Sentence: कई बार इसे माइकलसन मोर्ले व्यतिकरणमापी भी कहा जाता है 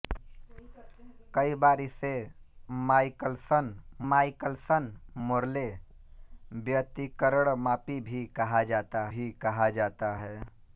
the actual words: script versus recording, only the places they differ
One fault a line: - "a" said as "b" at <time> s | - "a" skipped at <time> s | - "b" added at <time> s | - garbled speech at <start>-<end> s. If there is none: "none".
- "माइकलसन" added at 4.1 s
- "भी कहा जाता" added at 9.1 s